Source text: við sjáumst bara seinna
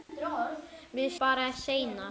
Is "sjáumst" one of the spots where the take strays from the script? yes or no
yes